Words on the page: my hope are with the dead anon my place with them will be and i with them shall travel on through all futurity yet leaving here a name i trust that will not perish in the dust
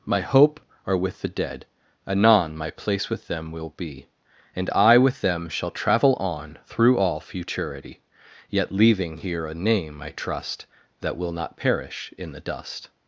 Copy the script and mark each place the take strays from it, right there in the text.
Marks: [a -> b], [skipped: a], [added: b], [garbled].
my hope are with the dead anon my place with them will be and i with them shall travel on through all futurity yet leaving here a name i trust that will not perish in the dust